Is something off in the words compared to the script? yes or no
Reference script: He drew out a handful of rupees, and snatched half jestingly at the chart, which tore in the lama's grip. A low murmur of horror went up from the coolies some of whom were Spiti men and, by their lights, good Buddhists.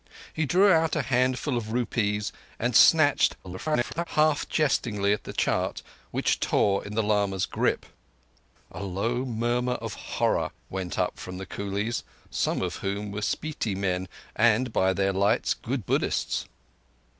yes